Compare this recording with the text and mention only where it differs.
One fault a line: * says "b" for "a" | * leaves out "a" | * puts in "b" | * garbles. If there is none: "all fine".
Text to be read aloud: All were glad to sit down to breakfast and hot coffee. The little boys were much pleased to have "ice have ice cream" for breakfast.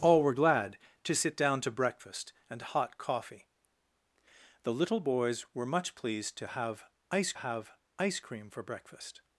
all fine